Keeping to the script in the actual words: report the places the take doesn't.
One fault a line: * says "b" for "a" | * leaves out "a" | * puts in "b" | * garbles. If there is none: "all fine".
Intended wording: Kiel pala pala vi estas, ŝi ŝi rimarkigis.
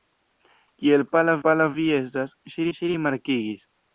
all fine